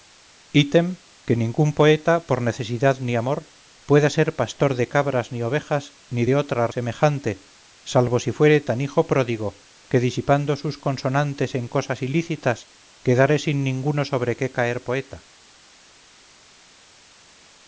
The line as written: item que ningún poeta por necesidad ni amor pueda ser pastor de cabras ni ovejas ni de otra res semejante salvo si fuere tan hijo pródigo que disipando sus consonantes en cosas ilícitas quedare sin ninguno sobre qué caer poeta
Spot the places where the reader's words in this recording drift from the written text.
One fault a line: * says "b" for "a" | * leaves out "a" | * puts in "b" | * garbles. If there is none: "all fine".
* leaves out "res"